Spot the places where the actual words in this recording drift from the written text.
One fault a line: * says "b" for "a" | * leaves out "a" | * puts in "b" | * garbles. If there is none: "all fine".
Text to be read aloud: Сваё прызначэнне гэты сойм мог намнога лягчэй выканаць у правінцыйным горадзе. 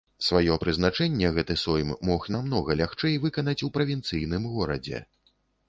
all fine